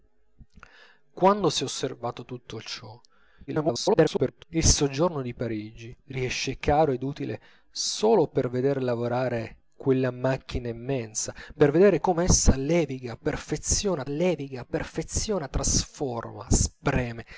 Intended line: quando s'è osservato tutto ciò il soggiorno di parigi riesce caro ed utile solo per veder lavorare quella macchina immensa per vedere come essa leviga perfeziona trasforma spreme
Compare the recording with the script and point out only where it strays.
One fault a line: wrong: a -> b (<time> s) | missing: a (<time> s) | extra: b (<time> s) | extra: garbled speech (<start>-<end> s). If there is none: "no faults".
extra: garbled speech (3.5-4.4 s)
extra: leviga perfeziona (14.1 s)